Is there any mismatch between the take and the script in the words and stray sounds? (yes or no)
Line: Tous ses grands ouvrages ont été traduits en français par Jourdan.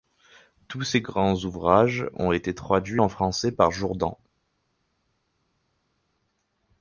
no